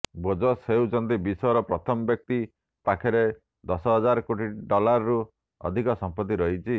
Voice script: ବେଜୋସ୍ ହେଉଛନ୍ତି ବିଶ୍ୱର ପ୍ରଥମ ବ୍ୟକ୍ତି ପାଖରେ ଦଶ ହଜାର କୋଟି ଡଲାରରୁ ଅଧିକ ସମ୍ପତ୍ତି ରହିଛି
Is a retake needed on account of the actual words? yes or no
no